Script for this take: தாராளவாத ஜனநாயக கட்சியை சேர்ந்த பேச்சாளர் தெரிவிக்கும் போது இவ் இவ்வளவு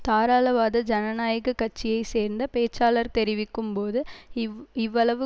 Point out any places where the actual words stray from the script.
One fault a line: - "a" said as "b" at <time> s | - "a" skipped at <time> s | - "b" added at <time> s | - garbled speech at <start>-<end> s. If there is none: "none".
none